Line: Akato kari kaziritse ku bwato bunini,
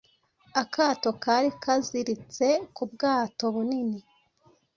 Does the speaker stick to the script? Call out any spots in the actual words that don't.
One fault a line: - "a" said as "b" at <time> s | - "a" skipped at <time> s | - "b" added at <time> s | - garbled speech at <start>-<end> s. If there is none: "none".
none